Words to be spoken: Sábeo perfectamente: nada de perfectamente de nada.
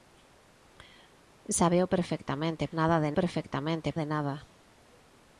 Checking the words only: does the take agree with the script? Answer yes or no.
yes